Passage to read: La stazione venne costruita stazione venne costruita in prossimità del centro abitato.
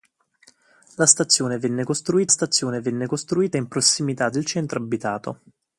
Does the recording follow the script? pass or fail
pass